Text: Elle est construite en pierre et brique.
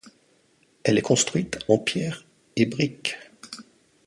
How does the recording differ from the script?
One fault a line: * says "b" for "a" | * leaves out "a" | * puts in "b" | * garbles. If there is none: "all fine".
all fine